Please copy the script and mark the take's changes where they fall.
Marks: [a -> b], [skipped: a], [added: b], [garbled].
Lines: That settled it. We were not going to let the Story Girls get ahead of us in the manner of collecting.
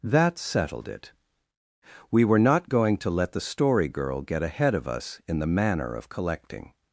That settled it. We were not going to let the Story [Girls -> Girl] get ahead of us in the manner of collecting.